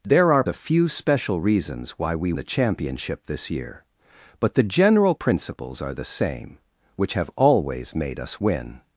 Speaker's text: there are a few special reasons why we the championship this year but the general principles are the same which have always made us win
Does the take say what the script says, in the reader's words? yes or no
yes